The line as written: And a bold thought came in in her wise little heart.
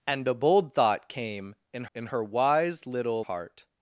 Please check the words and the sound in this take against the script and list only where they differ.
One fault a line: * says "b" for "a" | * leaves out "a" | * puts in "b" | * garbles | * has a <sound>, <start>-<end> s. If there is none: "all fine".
all fine